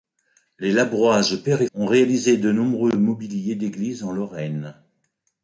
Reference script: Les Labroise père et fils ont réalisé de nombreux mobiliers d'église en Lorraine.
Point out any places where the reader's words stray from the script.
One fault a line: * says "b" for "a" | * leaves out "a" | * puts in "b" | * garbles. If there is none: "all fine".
* leaves out "fils"